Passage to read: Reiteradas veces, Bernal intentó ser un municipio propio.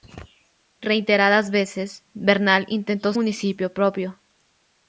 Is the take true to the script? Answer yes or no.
no